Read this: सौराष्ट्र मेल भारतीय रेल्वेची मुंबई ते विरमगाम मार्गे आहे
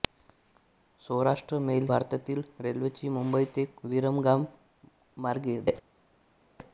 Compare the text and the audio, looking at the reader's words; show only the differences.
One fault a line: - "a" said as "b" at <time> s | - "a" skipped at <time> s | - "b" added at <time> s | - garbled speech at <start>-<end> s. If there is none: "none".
none